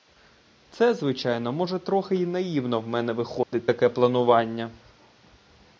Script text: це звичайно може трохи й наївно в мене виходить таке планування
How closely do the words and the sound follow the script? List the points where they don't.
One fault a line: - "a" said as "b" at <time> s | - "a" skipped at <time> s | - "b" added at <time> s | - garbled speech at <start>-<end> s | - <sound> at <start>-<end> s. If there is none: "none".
- dropout at 3.4-3.5 s